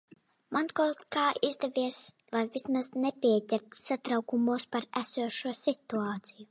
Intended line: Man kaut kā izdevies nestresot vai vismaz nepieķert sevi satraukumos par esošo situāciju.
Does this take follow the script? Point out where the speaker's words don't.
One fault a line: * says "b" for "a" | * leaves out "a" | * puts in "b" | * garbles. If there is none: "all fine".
* leaves out "nestresot"
* leaves out "sevi"